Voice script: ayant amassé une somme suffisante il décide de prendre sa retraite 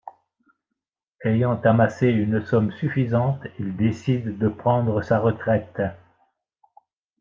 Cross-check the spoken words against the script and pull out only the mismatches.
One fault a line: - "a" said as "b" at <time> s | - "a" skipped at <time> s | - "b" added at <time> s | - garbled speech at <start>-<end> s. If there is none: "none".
none